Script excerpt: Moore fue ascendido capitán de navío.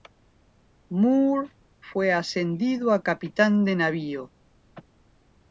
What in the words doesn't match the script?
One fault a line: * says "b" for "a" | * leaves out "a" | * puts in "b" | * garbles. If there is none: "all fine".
* puts in "a"